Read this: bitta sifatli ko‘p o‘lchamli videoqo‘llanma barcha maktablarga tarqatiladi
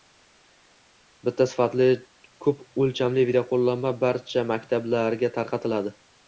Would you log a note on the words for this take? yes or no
no